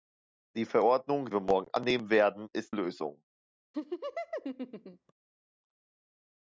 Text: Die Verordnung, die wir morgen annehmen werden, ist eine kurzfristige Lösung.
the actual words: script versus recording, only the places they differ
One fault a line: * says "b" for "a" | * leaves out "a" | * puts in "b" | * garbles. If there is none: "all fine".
* leaves out "die"
* leaves out "eine kurzfristige"